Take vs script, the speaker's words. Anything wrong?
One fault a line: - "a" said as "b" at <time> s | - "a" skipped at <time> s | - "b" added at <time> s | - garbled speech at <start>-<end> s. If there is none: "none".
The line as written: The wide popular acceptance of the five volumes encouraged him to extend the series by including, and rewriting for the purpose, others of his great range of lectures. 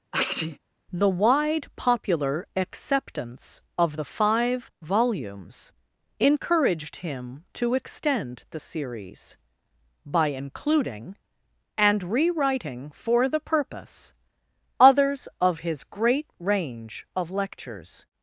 none